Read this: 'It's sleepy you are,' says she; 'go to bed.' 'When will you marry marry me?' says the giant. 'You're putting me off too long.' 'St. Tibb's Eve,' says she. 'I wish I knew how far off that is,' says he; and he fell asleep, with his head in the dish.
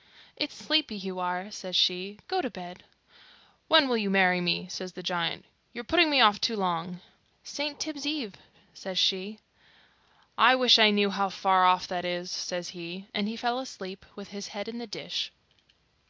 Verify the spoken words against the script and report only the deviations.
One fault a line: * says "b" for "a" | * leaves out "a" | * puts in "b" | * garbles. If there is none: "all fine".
* leaves out "marry"